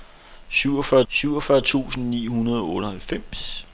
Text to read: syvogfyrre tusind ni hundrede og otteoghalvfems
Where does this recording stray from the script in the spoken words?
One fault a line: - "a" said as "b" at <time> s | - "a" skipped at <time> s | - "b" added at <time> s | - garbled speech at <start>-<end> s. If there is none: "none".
- "syvogfyrre" added at 1.1 s